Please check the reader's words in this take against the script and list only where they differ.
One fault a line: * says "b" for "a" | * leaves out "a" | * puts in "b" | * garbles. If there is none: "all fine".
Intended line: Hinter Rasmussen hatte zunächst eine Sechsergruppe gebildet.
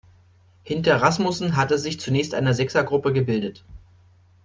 * puts in "sich"